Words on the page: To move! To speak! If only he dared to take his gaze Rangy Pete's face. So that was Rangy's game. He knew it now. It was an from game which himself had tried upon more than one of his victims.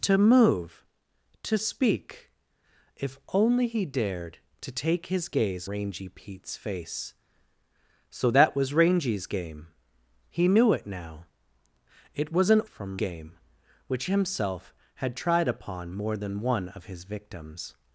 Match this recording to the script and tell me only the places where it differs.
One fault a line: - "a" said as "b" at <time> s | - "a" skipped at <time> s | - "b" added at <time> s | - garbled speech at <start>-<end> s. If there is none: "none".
none